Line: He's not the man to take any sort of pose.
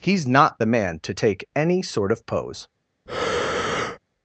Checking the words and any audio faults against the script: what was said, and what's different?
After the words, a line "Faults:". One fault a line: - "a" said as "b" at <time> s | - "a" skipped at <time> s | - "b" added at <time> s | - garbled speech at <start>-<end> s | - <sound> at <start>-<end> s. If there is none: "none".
He's not the man to take any sort of pose.
Faults:
- breath at 3.1-4.0 s